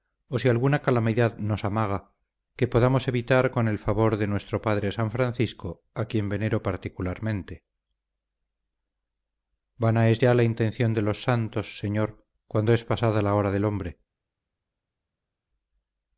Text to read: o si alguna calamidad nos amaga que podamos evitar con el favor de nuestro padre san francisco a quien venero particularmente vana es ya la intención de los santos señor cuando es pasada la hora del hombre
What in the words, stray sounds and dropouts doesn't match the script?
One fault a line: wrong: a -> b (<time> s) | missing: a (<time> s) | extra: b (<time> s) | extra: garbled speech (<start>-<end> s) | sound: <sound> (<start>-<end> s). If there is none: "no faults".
no faults